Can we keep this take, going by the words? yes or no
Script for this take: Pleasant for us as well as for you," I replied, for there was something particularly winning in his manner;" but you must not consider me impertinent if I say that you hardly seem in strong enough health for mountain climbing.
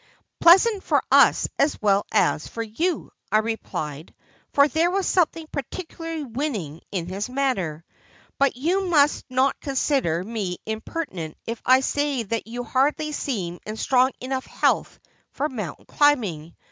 yes